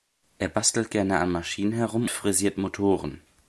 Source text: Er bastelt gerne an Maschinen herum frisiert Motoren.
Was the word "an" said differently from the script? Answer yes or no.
no